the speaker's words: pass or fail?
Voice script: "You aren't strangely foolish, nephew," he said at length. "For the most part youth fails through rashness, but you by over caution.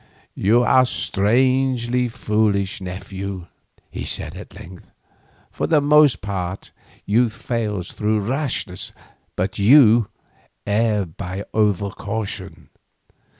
fail